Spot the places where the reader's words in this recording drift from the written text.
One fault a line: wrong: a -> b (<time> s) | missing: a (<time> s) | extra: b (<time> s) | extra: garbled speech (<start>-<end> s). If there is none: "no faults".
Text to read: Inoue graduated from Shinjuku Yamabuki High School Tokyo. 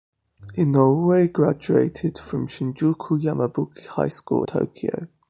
no faults